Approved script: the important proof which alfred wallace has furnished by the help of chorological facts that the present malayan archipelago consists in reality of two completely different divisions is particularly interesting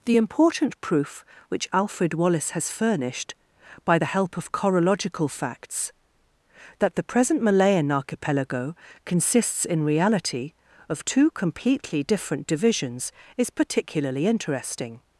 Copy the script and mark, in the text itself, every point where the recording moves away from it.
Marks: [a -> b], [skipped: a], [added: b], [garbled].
the important proof which alfred wallace has furnished by the help of chorological facts that the present malayan archipelago consists in reality of two completely different divisions is particularly interesting